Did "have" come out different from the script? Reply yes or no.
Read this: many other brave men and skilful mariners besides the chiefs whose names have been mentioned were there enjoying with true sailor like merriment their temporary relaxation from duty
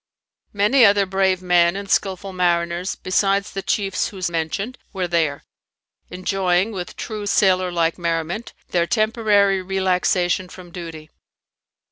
yes